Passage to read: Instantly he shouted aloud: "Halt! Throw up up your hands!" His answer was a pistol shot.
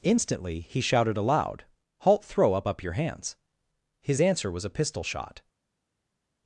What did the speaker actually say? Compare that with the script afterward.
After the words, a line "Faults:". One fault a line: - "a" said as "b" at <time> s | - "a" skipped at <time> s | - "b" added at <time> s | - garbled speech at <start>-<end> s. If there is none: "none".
Instantly he shouted aloud: "Halt! Throw up up your hands!" His answer was a pistol shot.
Faults:
none